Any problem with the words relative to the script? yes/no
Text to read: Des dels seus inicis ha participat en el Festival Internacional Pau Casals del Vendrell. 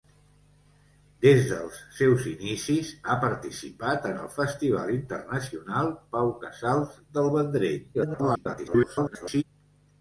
yes